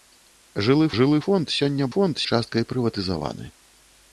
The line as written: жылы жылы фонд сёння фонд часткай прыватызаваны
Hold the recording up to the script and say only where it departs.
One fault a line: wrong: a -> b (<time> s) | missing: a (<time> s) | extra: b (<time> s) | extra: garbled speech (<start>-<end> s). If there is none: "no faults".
no faults